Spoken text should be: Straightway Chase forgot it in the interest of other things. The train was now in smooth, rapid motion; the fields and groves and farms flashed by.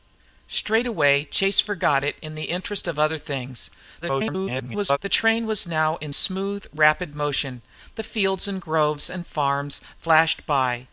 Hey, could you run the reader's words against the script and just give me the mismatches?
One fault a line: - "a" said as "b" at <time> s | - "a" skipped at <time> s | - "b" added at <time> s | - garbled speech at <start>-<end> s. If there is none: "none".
- garbled speech at 4.0-5.0 s